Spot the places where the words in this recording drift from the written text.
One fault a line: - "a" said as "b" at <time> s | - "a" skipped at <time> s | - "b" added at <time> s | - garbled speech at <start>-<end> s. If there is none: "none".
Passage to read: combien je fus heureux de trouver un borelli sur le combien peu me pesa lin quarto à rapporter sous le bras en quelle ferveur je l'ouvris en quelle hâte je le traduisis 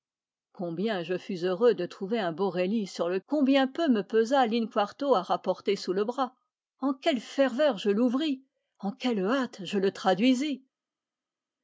none